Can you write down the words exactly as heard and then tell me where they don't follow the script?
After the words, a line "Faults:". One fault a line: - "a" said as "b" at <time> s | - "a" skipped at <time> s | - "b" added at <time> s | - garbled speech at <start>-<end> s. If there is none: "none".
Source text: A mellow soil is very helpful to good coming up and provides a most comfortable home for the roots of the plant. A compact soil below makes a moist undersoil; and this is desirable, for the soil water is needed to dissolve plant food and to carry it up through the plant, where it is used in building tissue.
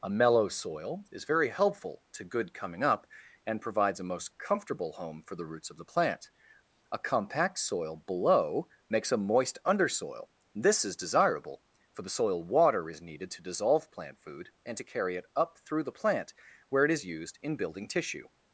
A mellow soil is very helpful to good coming up and provides a most comfortable home for the roots of the plant. A compact soil below makes a moist undersoil; this is desirable, for the soil water is needed to dissolve plant food and to carry it up through the plant, where it is used in building tissue.
Faults:
- "and" skipped at 10.3 s